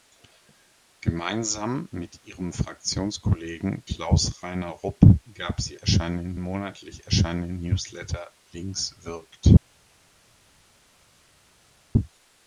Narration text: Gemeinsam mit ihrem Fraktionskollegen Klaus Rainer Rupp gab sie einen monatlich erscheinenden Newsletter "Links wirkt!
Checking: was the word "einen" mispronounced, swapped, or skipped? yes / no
yes